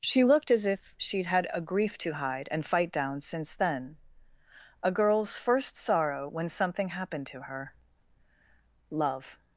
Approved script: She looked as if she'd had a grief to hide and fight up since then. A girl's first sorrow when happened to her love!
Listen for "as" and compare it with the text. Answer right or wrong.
right